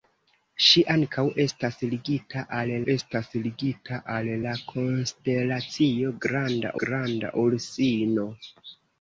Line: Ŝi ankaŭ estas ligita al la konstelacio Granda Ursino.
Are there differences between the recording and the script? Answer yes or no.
yes